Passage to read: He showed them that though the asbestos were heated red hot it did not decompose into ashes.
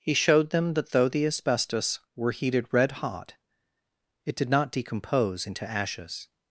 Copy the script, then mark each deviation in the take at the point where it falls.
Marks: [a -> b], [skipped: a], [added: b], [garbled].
He showed them that though the asbestos were heated red hot it did not decompose into ashes.